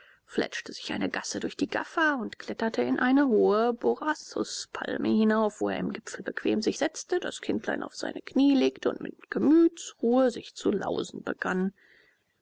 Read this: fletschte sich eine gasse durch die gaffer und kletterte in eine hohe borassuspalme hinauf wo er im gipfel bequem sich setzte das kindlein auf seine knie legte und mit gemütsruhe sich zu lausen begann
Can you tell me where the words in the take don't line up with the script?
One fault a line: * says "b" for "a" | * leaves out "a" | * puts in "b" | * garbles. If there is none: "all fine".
all fine